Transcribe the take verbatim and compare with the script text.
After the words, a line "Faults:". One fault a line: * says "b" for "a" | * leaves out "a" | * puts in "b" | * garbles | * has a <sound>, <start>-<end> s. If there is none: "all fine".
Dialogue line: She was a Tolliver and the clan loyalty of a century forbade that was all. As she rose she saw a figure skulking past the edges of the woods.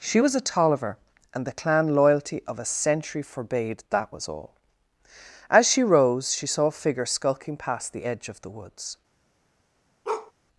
She was a Tolliver and the clan loyalty of a century forbade that was all. As she rose she saw a figure skulking past the edge of the woods.
Faults:
* says "edge" for "edges"
* has a bark, 10.0-10.3 s